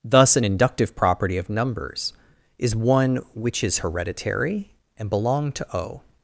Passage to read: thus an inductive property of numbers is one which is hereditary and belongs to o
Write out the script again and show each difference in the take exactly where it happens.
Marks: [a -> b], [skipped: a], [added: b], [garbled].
thus an inductive property of numbers is one which is hereditary and [belongs -> belong] to o